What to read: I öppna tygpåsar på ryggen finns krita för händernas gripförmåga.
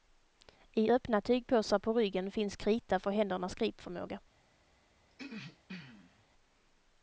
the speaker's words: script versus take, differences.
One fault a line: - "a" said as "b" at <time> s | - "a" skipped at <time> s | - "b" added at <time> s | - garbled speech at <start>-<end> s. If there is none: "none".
none